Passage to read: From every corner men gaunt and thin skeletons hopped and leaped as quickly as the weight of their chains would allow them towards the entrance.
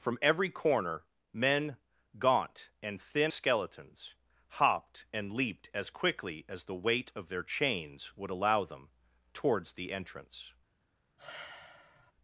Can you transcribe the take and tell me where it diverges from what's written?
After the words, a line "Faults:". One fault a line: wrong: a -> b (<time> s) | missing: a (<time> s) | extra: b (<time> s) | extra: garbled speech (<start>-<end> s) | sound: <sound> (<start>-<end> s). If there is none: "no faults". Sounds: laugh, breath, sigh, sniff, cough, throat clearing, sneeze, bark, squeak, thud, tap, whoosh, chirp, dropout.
From every corner men gaunt and thin skeletons hopped and leaped as quickly as the weight of their chains would allow them towards the entrance.
Faults:
sound: sigh (11.2-12.1 s)